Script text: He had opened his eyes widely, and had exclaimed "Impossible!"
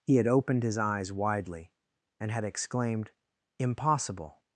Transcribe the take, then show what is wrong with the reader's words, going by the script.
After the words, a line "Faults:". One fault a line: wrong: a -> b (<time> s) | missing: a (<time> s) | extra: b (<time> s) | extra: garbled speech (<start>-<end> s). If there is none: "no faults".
He had opened his eyes widely, and had exclaimed "Impossible!"
Faults:
no faults